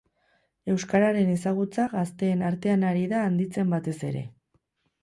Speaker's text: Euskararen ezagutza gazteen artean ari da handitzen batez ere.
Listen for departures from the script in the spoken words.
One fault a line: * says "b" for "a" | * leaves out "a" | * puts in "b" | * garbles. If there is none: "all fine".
all fine